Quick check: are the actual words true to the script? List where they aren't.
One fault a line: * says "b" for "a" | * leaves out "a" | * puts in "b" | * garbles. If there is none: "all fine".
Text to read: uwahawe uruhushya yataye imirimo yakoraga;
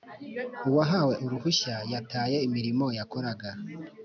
all fine